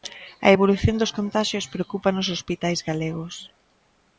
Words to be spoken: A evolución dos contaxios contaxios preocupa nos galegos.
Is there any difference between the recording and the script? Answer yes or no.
yes